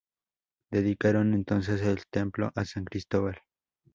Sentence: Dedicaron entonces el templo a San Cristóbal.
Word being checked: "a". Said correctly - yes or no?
yes